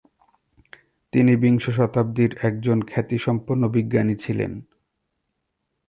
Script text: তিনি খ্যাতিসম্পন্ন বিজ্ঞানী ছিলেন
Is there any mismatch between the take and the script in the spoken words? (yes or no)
yes